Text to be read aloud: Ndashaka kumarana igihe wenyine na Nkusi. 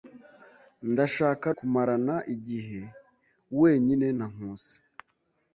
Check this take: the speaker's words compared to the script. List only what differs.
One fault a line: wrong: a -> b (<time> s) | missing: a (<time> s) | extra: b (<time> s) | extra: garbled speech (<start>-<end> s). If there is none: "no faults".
no faults